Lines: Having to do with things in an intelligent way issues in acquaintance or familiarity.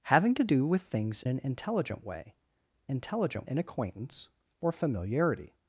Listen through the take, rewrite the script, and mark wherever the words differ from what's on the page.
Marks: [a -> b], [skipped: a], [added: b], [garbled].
Having to do with things [skipped: in] an intelligent way [issues -> intelligent] in acquaintance or familiarity.